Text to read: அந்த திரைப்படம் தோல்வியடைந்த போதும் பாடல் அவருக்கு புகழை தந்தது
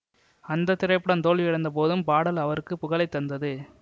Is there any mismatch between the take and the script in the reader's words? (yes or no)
no